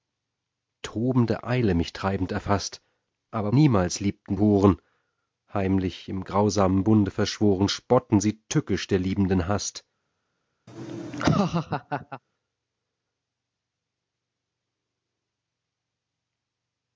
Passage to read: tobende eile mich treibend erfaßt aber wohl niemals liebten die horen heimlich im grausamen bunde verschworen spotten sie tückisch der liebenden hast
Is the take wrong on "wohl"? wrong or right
wrong